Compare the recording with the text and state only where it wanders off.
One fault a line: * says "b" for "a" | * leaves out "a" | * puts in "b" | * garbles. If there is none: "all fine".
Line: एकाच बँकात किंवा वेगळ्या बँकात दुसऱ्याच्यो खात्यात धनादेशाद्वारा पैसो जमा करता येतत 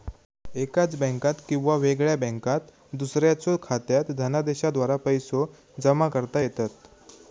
all fine